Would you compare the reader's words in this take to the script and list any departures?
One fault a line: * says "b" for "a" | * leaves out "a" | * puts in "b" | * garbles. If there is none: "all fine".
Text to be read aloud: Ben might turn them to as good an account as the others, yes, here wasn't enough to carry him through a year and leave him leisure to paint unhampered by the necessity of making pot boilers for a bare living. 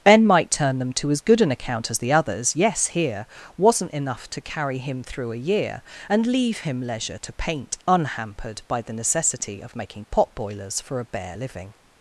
all fine